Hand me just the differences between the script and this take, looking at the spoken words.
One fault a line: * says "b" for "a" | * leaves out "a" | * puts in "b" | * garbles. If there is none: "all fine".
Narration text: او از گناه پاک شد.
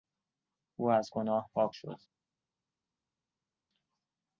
all fine